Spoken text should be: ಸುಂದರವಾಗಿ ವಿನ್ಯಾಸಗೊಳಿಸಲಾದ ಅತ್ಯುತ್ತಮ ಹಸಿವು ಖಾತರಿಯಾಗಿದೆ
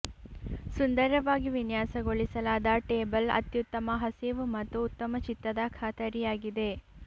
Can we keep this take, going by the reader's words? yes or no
no